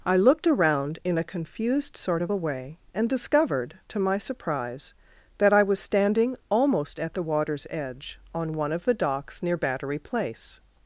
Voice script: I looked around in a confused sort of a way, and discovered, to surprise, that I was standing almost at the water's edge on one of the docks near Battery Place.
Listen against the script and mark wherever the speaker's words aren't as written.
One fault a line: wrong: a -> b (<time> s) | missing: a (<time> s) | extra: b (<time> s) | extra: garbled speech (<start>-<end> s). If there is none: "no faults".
extra: my (4.0 s)